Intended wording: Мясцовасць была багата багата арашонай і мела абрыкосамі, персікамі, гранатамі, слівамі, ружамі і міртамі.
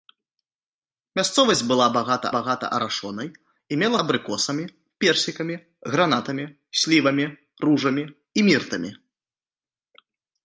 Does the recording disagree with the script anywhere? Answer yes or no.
no